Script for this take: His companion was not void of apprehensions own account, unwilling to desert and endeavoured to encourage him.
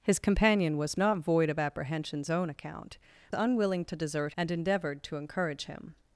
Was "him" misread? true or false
false